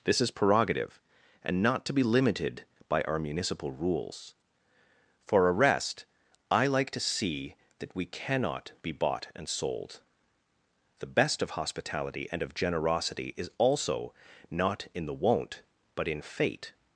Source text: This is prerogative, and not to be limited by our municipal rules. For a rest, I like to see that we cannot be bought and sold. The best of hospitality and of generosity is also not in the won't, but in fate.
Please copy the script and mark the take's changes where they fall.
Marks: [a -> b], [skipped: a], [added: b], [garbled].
This is prerogative, and not to be limited by our municipal rules. For a rest, I like to see that we cannot be bought and sold. The best of hospitality and of generosity is also not in the won't, but in fate.